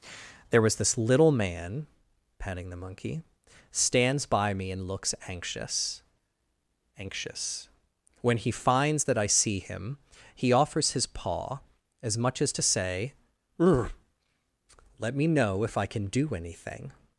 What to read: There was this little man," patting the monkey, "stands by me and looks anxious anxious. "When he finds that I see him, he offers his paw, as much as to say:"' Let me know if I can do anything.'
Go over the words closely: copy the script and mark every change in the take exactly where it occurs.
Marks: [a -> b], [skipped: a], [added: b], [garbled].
There was this little man," patting the monkey, "stands by me and looks anxious anxious. "When he finds that I see him, he offers his paw, as much as to say:"' Let me know if I can do anything.'